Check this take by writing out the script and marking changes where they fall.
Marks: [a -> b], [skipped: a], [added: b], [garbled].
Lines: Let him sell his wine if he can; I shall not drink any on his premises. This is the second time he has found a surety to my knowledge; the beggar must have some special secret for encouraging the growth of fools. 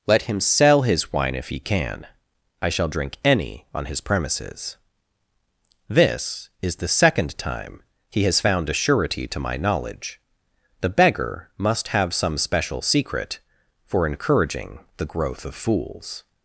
Let him sell his wine if he can; I shall [skipped: not] drink any on his premises. This is the second time he has found a surety to my knowledge; the beggar must have some special secret for encouraging the growth of fools.